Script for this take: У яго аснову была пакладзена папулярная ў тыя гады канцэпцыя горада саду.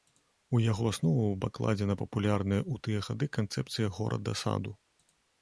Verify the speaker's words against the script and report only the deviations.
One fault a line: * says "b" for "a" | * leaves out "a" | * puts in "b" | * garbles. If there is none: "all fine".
* leaves out "была"